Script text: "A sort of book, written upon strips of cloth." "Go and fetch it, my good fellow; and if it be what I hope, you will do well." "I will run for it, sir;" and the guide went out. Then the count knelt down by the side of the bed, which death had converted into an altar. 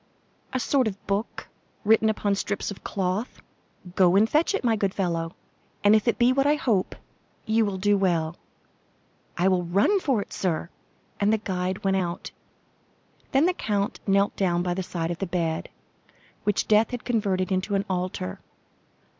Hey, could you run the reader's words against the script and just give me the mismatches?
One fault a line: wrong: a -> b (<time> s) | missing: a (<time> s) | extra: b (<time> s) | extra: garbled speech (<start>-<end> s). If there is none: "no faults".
no faults